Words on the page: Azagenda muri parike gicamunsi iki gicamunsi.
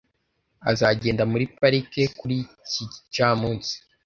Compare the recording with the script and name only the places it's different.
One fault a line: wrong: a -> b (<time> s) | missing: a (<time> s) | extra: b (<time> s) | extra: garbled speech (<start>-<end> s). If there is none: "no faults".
wrong: gicamunsi -> kuri (2.2 s)